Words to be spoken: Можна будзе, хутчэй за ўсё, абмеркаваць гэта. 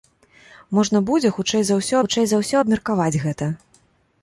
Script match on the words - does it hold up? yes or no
no